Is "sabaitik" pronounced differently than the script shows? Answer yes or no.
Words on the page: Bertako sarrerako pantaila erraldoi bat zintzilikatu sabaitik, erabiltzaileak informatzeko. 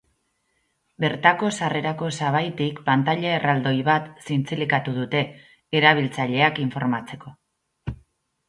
yes